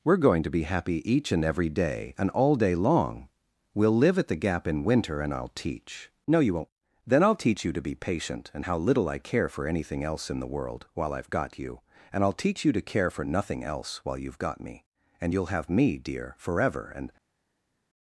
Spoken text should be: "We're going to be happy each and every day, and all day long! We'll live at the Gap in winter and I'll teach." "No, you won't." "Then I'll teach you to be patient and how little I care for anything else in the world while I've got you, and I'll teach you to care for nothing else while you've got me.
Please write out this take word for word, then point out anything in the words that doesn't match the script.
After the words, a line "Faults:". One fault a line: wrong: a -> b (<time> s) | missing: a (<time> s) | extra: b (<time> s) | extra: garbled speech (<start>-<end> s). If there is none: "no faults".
"We're going to be happy each and every day, and all day long! We'll live at the Gap in winter and I'll teach." "No, you won't." "Then I'll teach you to be patient and how little I care for anything else in the world while I've got you, and I'll teach you to care for nothing else while you've got me. And you'll have me, dear, forever and
Faults:
extra: And you'll have me dear forever and (15.2 s)